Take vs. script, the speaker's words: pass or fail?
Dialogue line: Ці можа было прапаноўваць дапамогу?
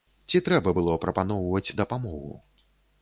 fail